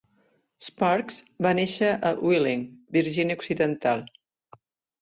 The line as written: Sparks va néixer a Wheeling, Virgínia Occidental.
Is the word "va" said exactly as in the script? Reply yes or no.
yes